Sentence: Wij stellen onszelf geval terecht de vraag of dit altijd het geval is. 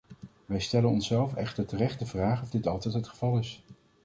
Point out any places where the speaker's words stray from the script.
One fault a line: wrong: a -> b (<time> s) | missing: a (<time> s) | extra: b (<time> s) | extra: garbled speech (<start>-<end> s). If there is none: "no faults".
wrong: geval -> echter (1.4 s)